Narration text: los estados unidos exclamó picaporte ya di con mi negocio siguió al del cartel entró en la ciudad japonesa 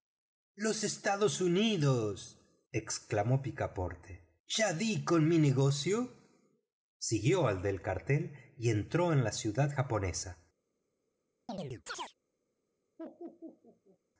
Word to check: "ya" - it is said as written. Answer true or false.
true